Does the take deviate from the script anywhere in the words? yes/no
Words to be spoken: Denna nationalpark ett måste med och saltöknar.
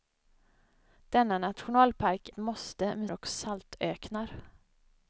no